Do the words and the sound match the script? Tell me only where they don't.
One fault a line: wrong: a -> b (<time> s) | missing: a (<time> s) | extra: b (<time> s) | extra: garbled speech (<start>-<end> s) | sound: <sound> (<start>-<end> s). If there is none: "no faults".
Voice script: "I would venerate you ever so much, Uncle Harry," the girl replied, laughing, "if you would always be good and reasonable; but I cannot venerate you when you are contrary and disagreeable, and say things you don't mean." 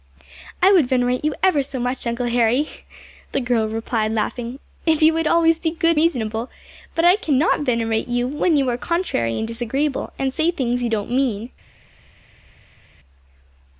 missing: and (6.0 s)